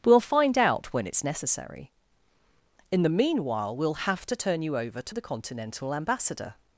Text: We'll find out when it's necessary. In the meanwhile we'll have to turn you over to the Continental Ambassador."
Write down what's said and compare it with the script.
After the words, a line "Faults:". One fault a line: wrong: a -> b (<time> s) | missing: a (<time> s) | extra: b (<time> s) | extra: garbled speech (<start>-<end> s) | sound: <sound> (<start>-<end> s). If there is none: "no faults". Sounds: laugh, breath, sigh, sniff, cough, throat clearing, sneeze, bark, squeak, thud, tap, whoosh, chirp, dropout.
We'll find out when it's necessary. In the meanwhile we'll have to turn you over to the Continental Ambassador."
Faults:
no faults